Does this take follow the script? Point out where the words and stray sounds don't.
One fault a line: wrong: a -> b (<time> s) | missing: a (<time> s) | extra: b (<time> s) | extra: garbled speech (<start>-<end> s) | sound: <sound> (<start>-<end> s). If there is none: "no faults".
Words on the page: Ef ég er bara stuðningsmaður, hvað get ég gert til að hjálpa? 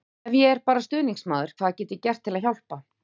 no faults